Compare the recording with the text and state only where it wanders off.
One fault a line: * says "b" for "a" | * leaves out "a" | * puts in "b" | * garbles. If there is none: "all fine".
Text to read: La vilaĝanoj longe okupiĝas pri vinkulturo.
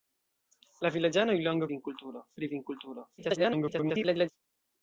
* says "vinkulturo" for "okupiĝas"
* garbles